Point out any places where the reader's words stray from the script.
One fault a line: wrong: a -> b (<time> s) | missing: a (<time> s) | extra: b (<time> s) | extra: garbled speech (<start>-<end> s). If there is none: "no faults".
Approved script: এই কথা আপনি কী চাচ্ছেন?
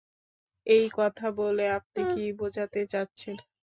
extra: বলে (1.4 s)
extra: বোঝাতে (2.4 s)